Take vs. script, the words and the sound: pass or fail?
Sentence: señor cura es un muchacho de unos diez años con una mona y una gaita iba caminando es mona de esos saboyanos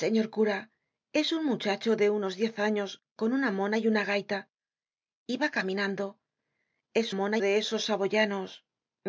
pass